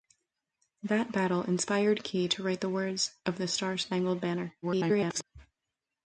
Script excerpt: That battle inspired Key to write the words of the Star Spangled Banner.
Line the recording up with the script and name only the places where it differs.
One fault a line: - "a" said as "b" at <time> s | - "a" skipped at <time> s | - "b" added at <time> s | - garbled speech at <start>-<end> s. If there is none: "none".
- garbled speech at 4.6-5.2 s